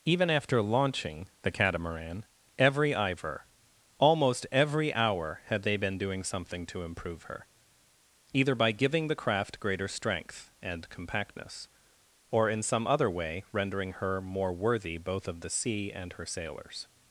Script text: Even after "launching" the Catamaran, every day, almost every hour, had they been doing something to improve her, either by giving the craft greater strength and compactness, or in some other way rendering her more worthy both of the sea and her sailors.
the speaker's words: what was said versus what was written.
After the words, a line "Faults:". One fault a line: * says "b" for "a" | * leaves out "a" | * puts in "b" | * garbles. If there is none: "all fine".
Even after "launching" the Catamaran, every ivor, almost every hour, had they been doing something to improve her, either by giving the craft greater strength and compactness, or in some other way rendering her more worthy both of the sea and her sailors.
Faults:
* says "ivor" for "day"